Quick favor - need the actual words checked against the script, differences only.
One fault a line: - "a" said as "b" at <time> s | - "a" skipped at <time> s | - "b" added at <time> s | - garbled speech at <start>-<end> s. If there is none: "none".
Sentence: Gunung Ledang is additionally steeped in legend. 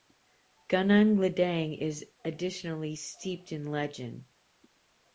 none